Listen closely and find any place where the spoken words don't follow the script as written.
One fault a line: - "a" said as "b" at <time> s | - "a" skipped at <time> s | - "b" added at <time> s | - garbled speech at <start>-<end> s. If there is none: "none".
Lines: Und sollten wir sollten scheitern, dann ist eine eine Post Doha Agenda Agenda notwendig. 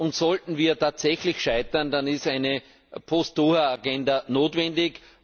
- "sollten" said as "tatsächlich" at 0.8 s
- "eine" skipped at 2.6 s
- "Agenda" skipped at 4.2 s